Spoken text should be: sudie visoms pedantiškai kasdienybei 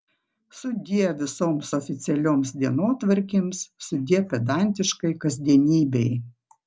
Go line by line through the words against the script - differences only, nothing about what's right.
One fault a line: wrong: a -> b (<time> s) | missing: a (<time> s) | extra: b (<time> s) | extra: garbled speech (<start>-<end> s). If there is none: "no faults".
extra: oficialioms dienotvarkėms sudie (1.8 s)